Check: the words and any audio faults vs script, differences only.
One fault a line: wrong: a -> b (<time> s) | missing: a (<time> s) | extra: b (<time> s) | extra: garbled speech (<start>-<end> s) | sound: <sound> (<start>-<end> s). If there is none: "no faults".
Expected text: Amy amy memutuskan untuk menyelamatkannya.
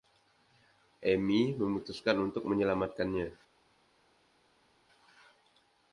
missing: amy (1.5 s)